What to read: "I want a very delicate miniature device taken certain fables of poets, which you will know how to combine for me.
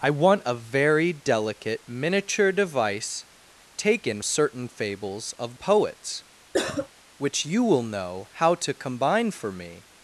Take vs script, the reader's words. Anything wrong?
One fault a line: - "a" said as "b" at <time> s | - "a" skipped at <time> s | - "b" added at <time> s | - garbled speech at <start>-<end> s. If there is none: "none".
none